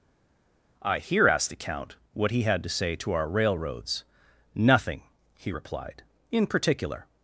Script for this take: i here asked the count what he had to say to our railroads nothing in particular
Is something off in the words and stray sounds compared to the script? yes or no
yes